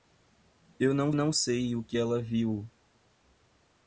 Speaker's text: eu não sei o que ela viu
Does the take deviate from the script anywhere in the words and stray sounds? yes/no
yes